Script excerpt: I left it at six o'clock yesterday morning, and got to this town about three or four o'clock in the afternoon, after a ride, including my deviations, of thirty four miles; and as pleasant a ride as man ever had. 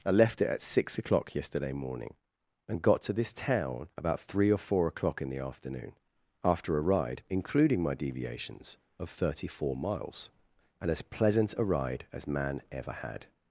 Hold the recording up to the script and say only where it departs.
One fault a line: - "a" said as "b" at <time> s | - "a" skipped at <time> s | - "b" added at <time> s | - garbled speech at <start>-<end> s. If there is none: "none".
none